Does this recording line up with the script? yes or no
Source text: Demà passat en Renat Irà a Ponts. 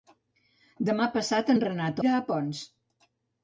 yes